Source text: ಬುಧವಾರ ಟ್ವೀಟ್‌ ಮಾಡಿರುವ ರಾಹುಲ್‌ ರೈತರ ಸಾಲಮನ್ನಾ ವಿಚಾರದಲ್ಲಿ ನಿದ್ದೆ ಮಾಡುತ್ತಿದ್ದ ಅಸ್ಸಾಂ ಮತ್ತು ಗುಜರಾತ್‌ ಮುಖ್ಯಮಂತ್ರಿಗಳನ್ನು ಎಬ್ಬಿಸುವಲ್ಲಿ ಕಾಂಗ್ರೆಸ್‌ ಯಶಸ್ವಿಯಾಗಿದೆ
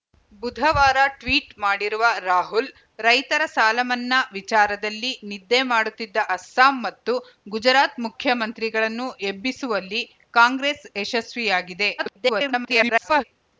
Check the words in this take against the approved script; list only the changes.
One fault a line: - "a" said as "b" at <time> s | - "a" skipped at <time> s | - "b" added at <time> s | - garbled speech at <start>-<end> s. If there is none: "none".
- garbled speech at 12.0-13.2 s